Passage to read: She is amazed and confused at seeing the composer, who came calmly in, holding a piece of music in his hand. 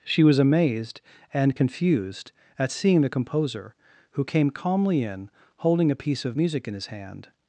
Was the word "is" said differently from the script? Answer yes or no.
yes